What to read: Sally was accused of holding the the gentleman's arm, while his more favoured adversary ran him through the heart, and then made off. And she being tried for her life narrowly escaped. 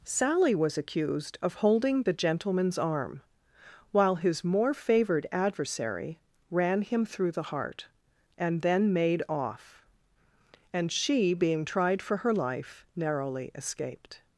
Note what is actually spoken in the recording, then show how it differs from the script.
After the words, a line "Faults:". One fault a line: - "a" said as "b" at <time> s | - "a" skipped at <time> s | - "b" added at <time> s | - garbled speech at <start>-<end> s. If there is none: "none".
Sally was accused of holding the gentleman's arm, while his more favoured adversary ran him through the heart, and then made off. And she being tried for her life narrowly escaped.
Faults:
- "the" skipped at 2.1 s